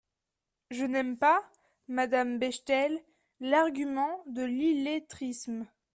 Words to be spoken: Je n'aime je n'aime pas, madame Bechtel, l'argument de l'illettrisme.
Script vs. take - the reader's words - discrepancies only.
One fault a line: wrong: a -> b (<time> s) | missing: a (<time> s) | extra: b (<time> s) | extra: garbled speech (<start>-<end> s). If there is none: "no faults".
missing: je n'aime (1.1 s)